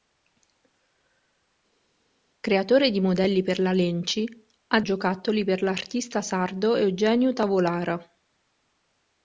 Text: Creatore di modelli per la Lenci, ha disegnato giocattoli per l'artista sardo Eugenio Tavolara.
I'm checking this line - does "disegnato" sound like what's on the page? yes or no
no